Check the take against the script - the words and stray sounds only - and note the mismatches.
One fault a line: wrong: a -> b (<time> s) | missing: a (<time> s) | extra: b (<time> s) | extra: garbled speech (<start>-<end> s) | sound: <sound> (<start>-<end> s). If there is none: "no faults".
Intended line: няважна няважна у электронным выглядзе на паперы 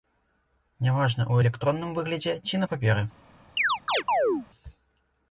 missing: няважна (1.3 s)
extra: ці (2.5 s)
sound: chirp (3.6-4.5 s)